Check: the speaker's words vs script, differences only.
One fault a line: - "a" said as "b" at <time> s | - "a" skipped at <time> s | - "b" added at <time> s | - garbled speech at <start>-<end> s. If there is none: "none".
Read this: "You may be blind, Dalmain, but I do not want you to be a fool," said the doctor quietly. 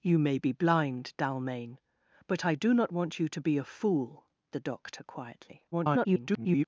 - "said" skipped at 4.2 s
- garbled speech at 5.7-6.7 s